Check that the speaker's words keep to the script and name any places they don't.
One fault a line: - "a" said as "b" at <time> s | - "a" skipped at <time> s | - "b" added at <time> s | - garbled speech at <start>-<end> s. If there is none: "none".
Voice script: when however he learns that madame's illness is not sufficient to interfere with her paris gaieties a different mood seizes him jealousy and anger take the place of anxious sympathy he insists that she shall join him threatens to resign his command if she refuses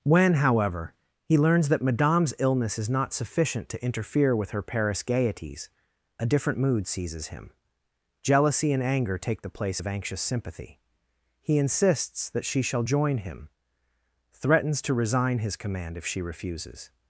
none